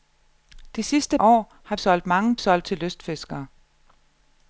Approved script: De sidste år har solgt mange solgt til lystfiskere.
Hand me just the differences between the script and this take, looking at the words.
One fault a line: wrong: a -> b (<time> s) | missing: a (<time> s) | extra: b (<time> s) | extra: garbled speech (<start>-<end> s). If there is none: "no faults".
no faults